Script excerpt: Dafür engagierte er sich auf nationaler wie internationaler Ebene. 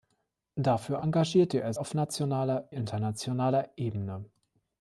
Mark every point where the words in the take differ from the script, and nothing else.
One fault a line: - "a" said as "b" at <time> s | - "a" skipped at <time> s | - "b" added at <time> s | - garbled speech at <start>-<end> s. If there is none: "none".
- "sich" skipped at 1.7 s
- "wie" skipped at 2.7 s